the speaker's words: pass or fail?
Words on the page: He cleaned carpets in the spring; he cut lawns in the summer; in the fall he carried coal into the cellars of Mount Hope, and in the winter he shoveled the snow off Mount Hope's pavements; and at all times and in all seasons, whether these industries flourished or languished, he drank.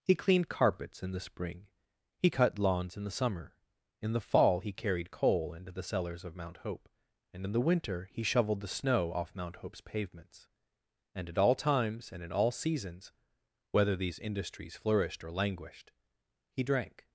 pass